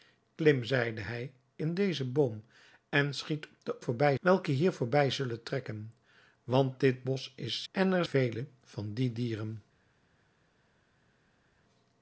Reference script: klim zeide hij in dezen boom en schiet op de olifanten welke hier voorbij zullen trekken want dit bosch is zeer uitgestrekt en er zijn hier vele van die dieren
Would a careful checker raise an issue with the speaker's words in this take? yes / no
yes